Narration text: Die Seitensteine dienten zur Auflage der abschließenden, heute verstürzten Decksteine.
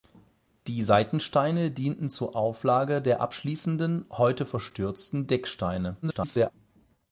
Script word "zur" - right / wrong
right